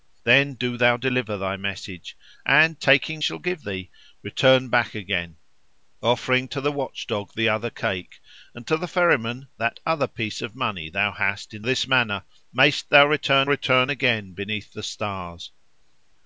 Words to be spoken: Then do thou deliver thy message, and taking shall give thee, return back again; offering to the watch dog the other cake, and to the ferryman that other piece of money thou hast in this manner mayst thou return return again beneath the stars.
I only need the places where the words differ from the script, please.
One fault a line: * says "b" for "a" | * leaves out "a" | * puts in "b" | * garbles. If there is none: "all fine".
all fine